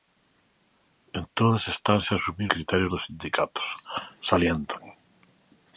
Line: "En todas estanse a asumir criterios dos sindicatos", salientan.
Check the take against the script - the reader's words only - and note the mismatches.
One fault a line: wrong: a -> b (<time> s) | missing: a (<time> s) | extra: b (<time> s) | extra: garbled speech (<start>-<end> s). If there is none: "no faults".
no faults